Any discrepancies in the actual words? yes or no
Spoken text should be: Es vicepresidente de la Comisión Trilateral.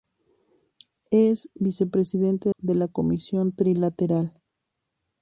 no